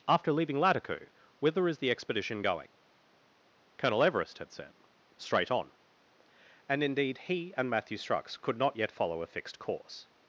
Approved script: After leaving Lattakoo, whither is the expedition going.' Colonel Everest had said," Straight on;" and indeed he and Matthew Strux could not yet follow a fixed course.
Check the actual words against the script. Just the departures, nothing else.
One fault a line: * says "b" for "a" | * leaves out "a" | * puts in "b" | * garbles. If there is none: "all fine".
all fine